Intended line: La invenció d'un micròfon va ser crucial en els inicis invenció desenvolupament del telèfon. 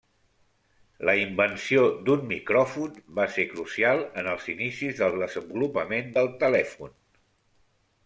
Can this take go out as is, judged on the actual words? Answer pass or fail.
fail